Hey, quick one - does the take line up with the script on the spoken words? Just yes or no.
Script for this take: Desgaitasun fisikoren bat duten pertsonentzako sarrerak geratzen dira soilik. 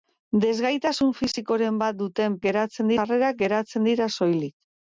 no